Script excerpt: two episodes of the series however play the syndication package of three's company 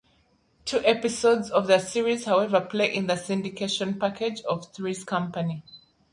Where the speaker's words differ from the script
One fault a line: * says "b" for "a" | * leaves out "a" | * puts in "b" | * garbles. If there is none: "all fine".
* puts in "in"